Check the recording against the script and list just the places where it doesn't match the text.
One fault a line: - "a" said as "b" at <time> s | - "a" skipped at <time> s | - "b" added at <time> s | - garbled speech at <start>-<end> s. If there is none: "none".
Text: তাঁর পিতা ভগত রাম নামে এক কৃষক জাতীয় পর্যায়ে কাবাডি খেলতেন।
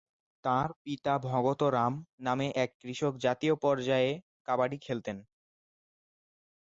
none